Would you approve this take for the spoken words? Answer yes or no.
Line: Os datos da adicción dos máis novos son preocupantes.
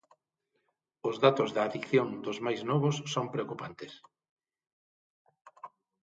yes